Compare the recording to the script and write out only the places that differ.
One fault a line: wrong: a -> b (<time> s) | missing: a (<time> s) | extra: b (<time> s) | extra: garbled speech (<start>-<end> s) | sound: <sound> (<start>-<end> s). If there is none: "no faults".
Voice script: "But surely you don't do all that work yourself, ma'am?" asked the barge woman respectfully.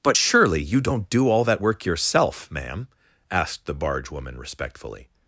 no faults